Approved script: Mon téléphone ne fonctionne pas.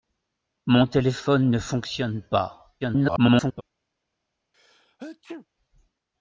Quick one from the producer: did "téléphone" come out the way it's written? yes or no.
yes